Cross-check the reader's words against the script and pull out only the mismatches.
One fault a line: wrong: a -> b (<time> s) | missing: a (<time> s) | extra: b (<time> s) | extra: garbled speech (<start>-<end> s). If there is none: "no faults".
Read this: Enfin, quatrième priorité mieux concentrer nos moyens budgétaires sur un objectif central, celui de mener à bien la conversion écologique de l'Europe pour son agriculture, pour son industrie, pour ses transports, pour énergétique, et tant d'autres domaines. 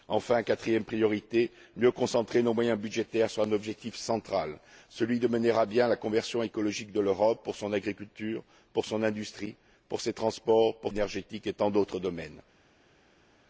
no faults